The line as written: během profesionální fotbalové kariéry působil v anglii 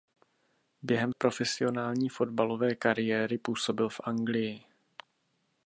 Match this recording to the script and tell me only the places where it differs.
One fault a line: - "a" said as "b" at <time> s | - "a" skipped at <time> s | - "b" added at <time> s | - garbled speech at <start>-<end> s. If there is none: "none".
none